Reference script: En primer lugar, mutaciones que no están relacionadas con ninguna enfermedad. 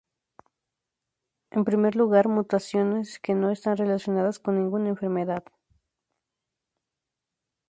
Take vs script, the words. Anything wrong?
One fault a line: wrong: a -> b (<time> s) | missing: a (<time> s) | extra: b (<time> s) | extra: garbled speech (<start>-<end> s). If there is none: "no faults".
no faults